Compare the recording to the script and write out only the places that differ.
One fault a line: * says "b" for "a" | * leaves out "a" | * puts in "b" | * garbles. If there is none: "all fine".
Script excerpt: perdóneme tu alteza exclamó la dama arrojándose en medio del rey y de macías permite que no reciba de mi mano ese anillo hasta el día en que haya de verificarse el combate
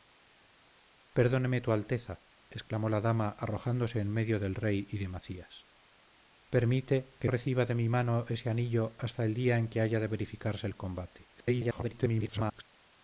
* leaves out "no"
* garbles